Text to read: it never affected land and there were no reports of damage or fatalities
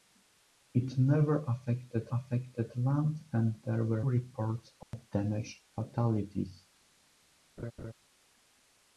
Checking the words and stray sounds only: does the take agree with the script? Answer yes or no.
no